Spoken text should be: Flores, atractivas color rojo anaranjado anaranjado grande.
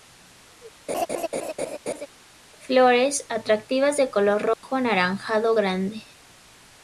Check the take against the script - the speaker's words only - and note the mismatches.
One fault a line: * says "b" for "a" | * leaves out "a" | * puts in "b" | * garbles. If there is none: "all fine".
* puts in "de"
* leaves out "anaranjado"